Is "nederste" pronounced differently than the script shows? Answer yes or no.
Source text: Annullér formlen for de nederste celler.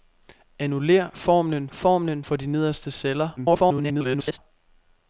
no